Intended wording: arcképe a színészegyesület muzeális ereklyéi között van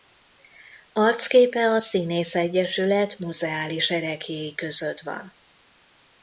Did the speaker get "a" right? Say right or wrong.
right